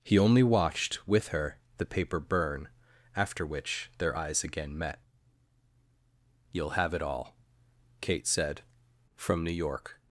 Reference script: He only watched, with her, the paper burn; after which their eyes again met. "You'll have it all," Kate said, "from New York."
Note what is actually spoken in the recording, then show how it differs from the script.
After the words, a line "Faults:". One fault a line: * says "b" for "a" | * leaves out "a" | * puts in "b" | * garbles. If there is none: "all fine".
He only watched, with her, the paper burn; after which their eyes again met. "You'll have it all," Kate said, "from New York."
Faults:
all fine